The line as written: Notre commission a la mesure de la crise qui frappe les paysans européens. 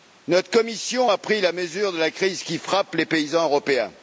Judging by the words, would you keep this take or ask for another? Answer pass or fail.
fail